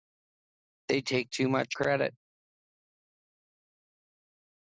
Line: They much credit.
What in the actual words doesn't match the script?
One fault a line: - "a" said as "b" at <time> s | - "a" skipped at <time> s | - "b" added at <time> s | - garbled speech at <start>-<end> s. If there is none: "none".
- "take too" added at 1.0 s